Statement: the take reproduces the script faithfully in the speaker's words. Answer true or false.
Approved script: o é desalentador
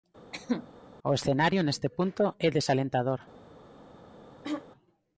false